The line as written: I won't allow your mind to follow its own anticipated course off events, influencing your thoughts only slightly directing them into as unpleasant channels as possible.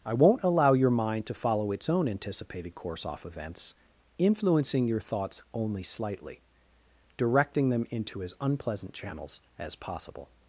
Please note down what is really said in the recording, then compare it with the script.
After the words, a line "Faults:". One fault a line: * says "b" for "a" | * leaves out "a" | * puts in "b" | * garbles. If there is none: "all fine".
I won't allow your mind to follow its own anticipated course off events, influencing your thoughts only slightly directing them into as unpleasant channels as possible.
Faults:
all fine